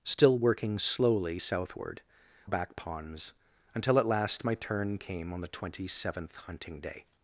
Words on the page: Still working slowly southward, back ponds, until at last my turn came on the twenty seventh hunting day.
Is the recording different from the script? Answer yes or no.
no